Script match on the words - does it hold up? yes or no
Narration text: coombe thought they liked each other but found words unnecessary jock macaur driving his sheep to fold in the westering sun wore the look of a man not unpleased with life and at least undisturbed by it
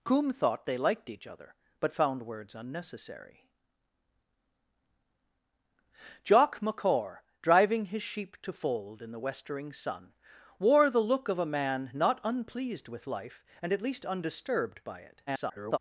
no